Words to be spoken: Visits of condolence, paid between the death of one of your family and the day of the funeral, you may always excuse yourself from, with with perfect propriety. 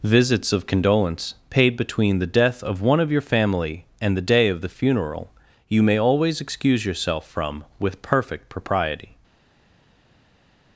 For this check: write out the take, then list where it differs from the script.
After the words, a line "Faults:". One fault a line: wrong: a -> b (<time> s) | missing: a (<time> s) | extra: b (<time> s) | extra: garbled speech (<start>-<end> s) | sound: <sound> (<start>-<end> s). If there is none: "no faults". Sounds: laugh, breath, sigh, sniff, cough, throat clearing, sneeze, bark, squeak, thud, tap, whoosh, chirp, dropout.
Visits of condolence, paid between the death of one of your family and the day of the funeral, you may always excuse yourself from, with perfect propriety.
Faults:
missing: with (8.0 s)